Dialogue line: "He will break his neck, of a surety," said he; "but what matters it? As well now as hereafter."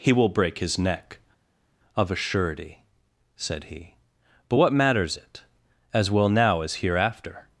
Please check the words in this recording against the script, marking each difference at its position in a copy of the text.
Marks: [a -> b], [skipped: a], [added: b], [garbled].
"He will break his neck, of a surety," said he; "but what matters it? As well now as hereafter."